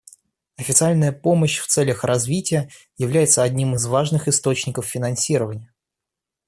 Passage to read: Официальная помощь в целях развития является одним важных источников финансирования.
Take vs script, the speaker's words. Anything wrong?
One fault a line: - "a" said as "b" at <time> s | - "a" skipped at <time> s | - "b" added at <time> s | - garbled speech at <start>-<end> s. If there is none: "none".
- "из" added at 3.7 s